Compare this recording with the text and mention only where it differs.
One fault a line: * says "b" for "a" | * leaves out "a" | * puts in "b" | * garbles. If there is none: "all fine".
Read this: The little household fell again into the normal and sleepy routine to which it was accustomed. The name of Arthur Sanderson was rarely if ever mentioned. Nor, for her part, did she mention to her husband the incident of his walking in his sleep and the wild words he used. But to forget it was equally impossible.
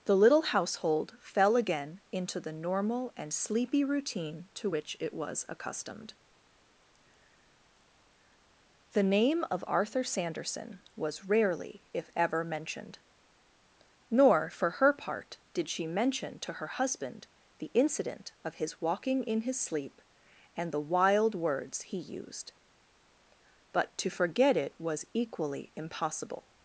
all fine